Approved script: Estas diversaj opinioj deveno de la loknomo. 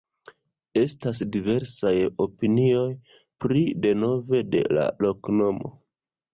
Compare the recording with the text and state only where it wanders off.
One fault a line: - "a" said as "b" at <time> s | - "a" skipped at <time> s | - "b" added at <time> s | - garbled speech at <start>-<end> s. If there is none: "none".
- "pri" added at 3.5 s